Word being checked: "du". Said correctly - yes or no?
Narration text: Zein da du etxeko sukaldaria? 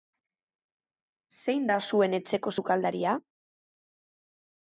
no